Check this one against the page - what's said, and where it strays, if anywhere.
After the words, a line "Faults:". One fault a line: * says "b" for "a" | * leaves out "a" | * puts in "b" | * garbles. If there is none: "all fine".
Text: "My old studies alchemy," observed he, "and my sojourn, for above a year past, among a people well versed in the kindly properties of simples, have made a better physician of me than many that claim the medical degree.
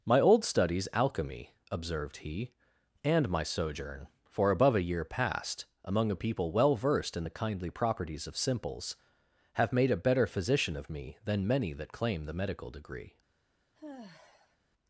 "My old studies alchemy," observed he, "and my sojourn, for above a year past, among a people well versed in the kindly properties of simples, have made a better physician of me than many that claim the medical degree.
Faults:
all fine